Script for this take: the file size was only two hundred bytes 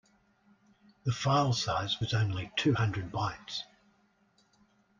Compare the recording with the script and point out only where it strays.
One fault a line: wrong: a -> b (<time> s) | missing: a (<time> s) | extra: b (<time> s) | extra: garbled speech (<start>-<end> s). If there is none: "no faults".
no faults